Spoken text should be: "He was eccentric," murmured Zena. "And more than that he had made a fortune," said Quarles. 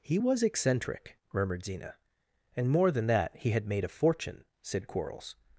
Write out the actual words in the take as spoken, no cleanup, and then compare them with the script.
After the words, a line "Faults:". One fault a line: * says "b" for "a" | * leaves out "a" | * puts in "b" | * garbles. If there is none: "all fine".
"He was eccentric," murmured Zena. "And more than that he had made a fortune," said Quarles.
Faults:
all fine